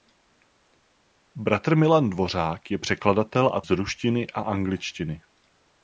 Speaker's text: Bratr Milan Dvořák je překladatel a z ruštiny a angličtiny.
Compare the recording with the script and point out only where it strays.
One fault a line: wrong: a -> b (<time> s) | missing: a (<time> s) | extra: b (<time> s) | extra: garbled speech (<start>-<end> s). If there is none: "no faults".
no faults